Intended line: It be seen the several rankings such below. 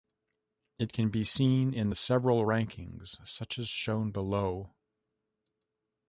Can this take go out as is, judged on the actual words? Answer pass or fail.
fail